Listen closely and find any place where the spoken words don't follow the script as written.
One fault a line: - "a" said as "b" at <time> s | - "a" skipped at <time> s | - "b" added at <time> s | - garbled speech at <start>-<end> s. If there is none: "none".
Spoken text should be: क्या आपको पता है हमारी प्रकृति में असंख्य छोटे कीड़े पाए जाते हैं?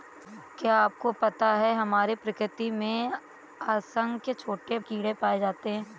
none